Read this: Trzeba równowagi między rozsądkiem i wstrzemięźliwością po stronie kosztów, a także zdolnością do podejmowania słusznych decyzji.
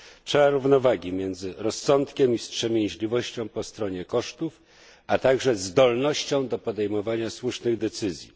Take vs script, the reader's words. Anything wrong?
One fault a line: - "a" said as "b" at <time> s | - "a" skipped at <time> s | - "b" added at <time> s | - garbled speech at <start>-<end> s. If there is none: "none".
none